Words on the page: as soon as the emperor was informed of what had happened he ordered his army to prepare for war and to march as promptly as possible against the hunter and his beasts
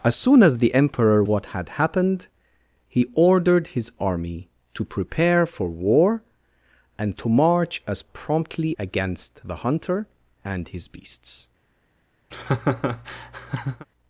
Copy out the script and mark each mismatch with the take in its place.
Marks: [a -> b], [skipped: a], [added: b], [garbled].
as soon as the emperor [skipped: was informed of] what had happened he ordered his army to prepare for war and to march as promptly [skipped: as possible] against the hunter and his beasts